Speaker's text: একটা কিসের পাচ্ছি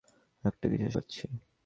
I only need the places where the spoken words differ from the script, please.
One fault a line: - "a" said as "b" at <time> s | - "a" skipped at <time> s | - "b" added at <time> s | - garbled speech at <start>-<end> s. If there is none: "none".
none